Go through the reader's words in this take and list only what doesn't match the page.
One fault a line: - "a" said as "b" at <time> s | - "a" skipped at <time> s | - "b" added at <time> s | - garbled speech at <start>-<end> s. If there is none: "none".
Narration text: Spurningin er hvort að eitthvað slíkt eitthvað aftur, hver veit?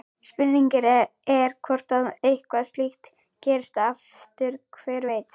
- "eitthvað" said as "gerist" at 3.5 s